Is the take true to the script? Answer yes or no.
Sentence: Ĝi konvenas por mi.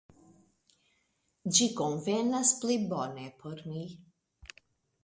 no